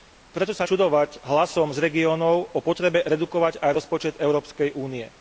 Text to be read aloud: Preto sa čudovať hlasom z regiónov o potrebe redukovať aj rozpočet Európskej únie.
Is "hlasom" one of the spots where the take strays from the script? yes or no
no